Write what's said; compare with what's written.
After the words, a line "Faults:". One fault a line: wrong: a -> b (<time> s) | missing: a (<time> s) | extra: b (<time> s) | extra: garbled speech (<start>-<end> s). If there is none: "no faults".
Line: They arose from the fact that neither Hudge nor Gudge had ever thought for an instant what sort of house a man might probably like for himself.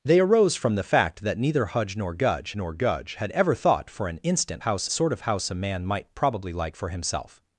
They arose from the fact that neither Hudge nor Gudge nor Gudge had ever thought for an instant house sort of house a man might probably like for himself.
Faults:
extra: nor Gudge (2.5 s)
wrong: what -> house (4.6 s)